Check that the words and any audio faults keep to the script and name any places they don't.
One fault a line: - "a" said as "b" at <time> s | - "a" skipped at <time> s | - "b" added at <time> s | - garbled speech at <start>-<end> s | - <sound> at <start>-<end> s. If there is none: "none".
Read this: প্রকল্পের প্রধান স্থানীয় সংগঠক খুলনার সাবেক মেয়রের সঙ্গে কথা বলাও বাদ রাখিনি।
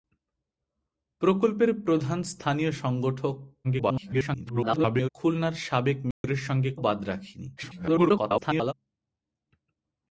- garbled speech at 3.6-5.1 s
- dropout at 6.1-6.2 s
- "কথা বলাও" skipped at 6.7 s
- garbled speech at 7.6-8.7 s